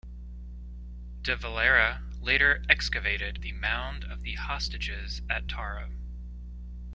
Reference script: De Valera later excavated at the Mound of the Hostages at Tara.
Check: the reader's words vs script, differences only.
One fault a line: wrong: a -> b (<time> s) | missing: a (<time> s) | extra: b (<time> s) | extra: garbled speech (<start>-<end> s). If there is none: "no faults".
missing: at (3.4 s)